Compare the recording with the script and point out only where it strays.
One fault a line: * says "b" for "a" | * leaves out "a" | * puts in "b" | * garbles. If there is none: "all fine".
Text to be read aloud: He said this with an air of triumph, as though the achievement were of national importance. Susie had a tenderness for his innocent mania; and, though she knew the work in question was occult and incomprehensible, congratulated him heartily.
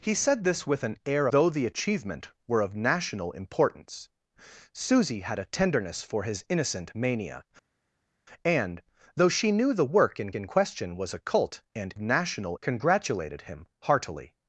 * leaves out "of triumph as"
* puts in "in"
* says "national" for "incomprehensible"